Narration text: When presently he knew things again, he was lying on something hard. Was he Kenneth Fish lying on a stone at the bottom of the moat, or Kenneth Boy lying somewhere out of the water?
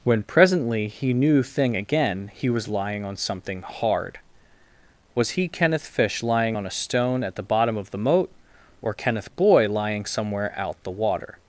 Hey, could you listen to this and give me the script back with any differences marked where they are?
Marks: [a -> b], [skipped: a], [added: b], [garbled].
When presently he knew [things -> thing] again, he was lying on something hard. Was he Kenneth Fish lying on a stone at the bottom of the moat, or Kenneth Boy lying somewhere out [skipped: of] the water?